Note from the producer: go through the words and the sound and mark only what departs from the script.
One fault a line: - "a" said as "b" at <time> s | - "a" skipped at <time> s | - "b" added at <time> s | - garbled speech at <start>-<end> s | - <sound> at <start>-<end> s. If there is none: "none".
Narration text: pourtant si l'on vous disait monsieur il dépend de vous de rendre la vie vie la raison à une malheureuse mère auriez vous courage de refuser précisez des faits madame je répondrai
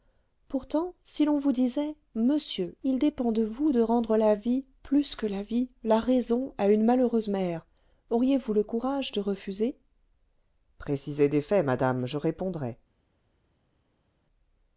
- "plus que la" added at 4.8 s
- "le" added at 8.5 s